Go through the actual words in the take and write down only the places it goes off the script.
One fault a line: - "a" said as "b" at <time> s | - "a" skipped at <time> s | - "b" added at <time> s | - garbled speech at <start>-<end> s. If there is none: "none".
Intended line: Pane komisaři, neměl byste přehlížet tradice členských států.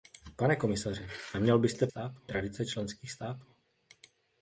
- "přehlížet" said as "států" at 1.9 s